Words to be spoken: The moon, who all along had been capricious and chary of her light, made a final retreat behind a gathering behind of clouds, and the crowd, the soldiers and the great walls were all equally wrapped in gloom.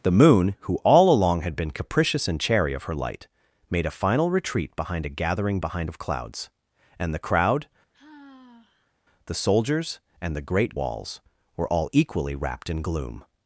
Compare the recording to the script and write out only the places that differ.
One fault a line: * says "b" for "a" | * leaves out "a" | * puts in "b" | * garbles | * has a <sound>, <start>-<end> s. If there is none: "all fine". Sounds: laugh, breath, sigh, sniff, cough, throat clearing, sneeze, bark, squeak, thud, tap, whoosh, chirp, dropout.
* has a sigh, 7.9-9.0 s